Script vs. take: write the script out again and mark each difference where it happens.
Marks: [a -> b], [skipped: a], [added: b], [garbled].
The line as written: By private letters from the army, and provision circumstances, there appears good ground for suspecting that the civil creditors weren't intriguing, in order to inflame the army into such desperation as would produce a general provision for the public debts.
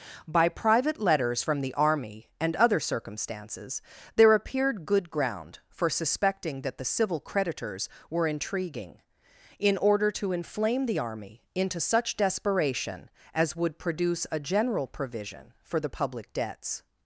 By private letters from the army, and [provision -> other] circumstances, there [appears -> appeared] good ground for suspecting that the civil creditors [weren't -> were] intriguing, in order to inflame the army into such desperation as would produce a general provision for the public debts.